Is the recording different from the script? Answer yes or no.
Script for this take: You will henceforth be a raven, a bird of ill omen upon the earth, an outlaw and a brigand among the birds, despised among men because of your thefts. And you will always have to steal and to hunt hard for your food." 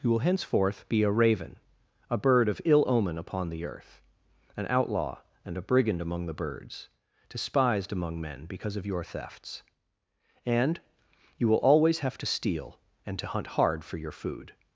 no